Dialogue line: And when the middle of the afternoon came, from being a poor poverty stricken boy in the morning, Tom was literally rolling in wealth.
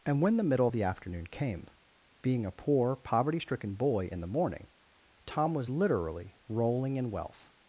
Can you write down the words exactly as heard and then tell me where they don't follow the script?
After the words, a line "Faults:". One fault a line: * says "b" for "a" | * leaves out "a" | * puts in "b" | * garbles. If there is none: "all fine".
And when the middle of the afternoon came, being a poor poverty stricken boy in the morning, Tom was literally rolling in wealth.
Faults:
* leaves out "from"